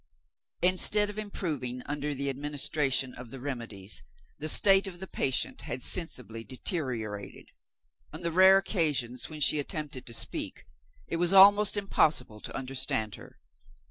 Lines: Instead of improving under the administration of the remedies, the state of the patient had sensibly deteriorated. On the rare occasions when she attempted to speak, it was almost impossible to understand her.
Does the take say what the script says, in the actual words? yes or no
yes